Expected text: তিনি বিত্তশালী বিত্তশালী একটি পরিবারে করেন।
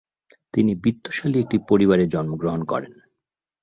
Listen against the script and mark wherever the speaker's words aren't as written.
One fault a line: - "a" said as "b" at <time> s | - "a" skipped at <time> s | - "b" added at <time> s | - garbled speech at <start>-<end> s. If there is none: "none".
- "বিত্তশালী" skipped at 1.4 s
- "জন্মগ্রহণ" added at 2.1 s